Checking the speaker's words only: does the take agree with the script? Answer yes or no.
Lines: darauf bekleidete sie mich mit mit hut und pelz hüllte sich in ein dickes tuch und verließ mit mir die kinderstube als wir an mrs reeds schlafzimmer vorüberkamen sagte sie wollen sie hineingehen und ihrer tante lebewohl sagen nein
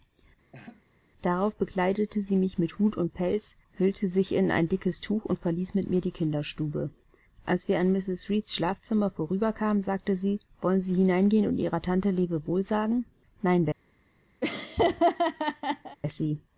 no